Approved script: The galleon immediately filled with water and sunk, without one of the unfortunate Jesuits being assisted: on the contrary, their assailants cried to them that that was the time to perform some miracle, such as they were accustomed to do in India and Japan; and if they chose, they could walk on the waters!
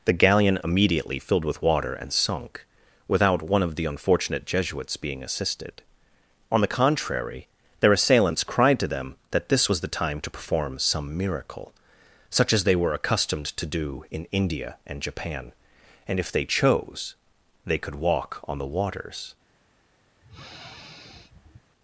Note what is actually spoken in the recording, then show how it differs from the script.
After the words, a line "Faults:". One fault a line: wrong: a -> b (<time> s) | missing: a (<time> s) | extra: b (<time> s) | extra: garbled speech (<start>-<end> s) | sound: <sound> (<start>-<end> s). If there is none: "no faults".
The galleon immediately filled with water and sunk, without one of the unfortunate Jesuits being assisted: on the contrary, their assailants cried to them that this was the time to perform some miracle, such as they were accustomed to do in India and Japan; and if they chose, they could walk on the waters!
Faults:
wrong: that -> this (9.5 s)
sound: sniff (20.2-21.7 s)